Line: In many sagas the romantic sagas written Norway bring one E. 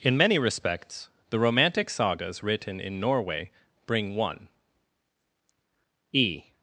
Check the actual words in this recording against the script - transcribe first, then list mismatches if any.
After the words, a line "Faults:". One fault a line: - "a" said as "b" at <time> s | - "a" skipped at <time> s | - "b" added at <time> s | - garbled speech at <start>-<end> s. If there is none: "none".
In many respects the romantic sagas written in Norway bring one E.
Faults:
- "sagas" said as "respects" at 0.4 s
- "in" added at 2.8 s